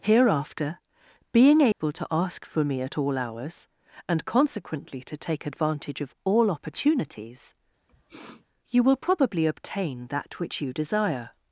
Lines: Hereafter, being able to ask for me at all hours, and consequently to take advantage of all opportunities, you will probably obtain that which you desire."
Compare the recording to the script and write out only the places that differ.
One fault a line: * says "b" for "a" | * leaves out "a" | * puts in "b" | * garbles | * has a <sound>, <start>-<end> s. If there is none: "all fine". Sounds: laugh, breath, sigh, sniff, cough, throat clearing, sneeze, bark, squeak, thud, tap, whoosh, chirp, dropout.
* has a dropout, 1.7-1.8 s
* has a sniff, 7.9-8.5 s